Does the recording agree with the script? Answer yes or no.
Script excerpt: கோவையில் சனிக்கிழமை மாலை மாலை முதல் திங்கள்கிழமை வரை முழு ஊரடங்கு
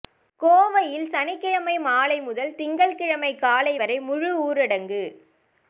no